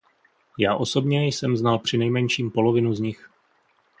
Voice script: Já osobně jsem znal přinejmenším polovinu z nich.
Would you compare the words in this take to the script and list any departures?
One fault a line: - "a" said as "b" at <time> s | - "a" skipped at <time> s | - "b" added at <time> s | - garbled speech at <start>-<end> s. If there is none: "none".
none